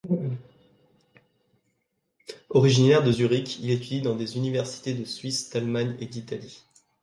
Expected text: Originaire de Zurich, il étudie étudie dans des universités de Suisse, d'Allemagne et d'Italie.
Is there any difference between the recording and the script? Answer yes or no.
yes